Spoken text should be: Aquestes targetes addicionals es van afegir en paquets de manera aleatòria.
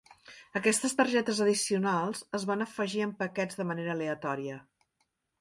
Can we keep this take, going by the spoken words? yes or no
yes